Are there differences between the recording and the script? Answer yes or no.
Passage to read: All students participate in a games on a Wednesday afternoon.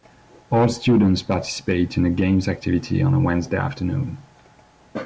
yes